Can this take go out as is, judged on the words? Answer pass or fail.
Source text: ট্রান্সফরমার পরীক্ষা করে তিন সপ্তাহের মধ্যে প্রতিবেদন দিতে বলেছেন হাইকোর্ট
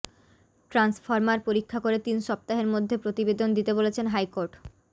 pass